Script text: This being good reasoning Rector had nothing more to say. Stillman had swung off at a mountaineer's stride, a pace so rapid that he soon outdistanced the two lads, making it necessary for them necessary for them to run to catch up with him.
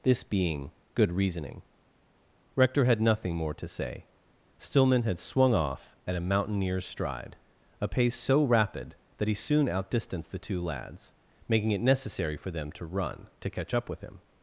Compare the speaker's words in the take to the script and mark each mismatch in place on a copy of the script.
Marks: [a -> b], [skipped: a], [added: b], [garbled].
This being good reasoning Rector had nothing more to say. Stillman had swung off at a mountaineer's stride, a pace so rapid that he soon outdistanced the two lads, making it necessary for them [skipped: necessary for them] to run to catch up with him.